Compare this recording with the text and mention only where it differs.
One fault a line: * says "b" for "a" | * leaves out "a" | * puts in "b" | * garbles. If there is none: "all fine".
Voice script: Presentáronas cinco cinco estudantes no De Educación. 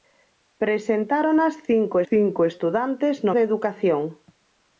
all fine